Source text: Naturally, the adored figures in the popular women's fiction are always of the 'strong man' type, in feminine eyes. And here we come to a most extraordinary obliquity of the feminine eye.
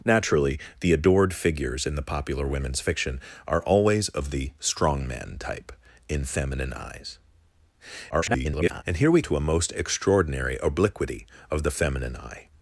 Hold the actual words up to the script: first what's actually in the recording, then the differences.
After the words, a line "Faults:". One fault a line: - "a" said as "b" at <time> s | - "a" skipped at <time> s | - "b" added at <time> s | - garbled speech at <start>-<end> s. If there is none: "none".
Naturally, the adored figures in the popular women's fiction are always of the 'strong man' type, in feminine eyes. [garbled] And here we to a most extraordinary obliquity of the feminine eye.
Faults:
- garbled speech at 8.1-8.8 s
- "come" skipped at 9.2 s